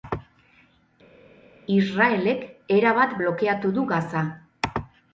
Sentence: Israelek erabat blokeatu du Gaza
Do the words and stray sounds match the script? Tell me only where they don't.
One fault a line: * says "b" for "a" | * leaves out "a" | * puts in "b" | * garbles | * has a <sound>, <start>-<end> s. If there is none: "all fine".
all fine